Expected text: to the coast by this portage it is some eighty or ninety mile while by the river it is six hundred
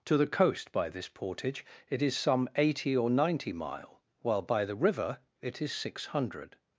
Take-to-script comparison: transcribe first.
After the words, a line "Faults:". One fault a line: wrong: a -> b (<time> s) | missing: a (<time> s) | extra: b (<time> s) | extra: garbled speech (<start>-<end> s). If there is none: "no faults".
to the coast by this portage it is some eighty or ninety mile while by the river it is six hundred
Faults:
no faults